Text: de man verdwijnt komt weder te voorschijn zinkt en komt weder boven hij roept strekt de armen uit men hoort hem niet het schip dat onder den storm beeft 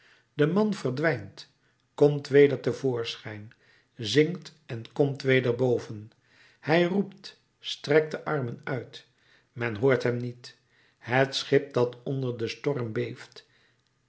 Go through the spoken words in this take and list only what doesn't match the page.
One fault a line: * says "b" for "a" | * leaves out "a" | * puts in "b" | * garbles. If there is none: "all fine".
all fine